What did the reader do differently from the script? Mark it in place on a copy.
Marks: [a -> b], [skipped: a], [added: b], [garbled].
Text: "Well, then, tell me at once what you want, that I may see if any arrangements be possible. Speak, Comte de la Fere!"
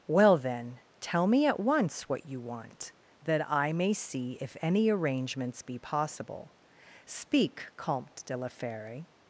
"Well, then, tell me at once what you want, that I may see if any arrangements be possible. Speak, Comte de la Fere!"